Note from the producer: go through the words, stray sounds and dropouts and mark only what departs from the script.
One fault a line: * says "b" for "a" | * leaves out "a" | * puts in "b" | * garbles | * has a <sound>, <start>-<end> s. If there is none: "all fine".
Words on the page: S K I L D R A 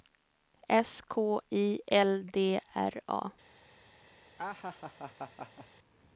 * has a laugh, 4.4-5.7 s